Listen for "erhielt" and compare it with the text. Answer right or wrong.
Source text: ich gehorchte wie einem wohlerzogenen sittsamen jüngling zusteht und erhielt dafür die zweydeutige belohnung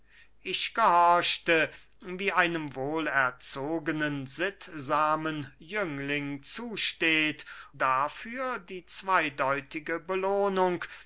wrong